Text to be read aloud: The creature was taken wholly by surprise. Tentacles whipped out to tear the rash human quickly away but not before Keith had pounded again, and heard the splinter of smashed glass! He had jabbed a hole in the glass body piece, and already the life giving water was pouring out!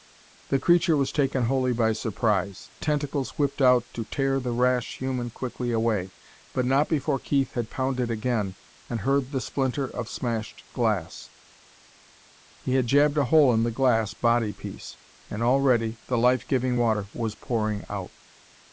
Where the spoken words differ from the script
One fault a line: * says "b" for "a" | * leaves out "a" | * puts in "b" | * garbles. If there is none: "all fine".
all fine